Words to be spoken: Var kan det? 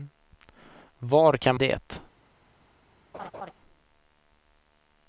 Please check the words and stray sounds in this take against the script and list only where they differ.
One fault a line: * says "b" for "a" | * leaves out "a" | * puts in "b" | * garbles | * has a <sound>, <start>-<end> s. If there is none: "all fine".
* has a laugh, 3.1-3.5 s